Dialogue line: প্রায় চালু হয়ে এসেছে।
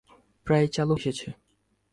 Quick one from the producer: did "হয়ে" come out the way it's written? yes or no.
no